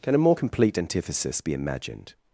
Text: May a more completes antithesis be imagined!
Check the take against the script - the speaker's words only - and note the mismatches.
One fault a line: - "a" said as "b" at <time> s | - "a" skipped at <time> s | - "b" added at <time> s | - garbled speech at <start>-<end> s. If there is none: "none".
- "May" said as "Can" at 0.0 s
- "completes" said as "complete" at 0.3 s